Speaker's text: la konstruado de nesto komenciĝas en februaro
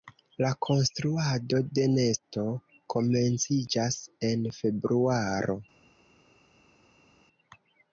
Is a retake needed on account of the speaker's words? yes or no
no